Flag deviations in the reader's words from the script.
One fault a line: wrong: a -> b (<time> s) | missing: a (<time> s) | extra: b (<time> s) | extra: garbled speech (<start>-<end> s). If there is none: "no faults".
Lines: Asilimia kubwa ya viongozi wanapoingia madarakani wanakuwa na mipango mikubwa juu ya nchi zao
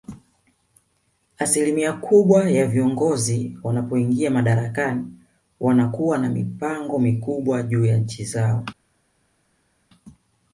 no faults